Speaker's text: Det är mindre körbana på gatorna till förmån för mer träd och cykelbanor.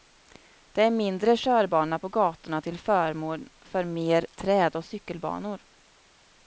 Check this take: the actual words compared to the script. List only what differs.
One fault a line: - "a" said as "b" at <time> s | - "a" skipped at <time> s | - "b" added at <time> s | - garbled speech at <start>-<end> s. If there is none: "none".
none